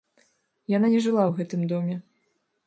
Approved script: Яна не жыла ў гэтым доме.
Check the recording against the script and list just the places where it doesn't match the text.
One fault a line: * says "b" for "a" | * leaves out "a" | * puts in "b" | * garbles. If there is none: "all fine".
all fine